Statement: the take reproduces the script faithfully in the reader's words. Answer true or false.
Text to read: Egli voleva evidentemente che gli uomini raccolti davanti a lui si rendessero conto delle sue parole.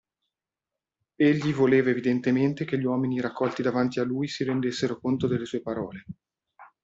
true